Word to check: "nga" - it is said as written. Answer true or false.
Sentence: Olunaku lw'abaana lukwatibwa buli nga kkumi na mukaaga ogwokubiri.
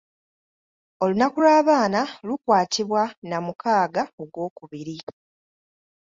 false